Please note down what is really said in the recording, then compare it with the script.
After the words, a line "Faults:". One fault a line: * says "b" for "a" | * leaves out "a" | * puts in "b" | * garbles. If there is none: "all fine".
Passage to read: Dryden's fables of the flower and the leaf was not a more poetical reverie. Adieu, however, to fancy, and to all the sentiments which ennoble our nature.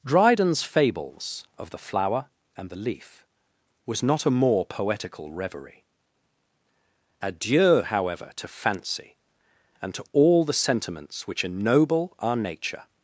Dryden's fables of the flower and the leaf was not a more poetical reverie. Adieu, however, to fancy, and to all the sentiments which ennoble our nature.
Faults:
all fine